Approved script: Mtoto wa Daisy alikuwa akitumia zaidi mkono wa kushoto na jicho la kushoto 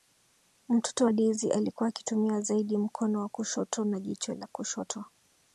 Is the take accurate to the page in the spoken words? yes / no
yes